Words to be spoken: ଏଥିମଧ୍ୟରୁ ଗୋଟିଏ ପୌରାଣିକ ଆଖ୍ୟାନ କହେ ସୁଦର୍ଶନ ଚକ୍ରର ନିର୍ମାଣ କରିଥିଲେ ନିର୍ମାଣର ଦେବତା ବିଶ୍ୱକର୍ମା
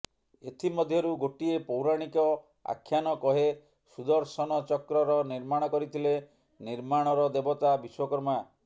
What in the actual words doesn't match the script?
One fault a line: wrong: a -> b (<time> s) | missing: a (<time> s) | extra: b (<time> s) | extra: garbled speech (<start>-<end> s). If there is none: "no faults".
no faults